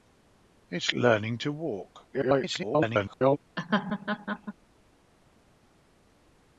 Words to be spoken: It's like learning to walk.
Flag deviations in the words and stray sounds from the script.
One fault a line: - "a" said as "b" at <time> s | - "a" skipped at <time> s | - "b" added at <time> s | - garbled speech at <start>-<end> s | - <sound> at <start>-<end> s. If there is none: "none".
- "like" skipped at 0.9 s
- garbled speech at 2.1-3.4 s
- laugh at 3.6-4.5 s